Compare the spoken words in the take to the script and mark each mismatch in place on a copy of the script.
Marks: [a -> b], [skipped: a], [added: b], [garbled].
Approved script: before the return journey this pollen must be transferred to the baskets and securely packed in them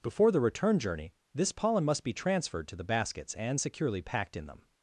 before the return journey this pollen must be transferred to the baskets and securely packed in them